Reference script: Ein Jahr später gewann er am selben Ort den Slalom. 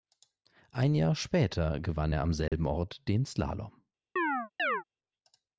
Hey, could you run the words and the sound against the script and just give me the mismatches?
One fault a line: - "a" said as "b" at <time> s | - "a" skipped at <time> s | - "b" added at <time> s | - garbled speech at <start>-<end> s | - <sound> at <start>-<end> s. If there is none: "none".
- dropout at 2.5-2.5 s
- chirp at 4.2-4.8 s